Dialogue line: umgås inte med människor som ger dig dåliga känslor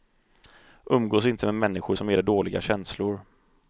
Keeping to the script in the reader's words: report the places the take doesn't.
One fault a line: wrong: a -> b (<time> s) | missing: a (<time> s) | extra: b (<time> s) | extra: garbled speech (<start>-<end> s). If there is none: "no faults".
no faults